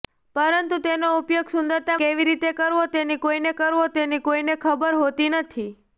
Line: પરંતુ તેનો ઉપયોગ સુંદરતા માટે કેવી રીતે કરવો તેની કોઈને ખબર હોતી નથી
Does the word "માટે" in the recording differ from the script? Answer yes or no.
yes